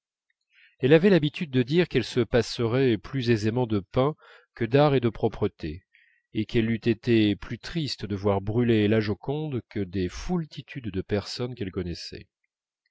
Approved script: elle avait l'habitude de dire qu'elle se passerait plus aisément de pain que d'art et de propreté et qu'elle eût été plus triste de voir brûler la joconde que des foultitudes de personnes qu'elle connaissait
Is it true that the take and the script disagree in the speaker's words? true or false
false